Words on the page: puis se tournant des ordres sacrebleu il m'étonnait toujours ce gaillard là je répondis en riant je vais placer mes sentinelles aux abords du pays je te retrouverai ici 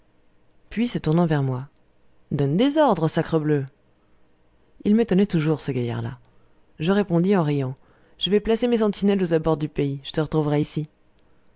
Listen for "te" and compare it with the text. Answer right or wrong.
right